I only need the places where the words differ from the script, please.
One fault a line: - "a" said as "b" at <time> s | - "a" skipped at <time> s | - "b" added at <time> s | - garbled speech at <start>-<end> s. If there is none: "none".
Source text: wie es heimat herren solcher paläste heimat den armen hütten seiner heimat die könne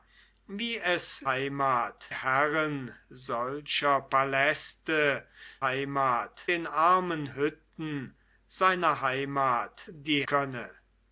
none